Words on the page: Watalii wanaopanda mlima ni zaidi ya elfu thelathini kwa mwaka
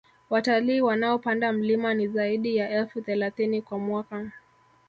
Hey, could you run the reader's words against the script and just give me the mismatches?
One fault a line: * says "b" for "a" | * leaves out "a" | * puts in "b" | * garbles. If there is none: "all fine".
all fine